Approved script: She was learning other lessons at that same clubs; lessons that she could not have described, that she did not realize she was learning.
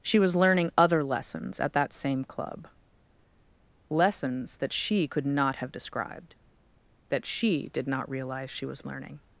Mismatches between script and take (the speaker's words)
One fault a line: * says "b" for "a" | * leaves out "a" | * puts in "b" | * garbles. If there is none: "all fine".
* says "club" for "clubs"